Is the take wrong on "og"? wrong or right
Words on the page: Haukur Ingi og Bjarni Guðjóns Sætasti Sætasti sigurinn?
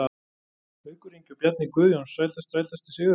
right